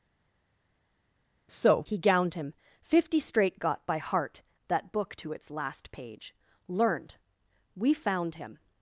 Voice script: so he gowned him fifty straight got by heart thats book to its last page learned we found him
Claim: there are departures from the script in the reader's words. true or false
true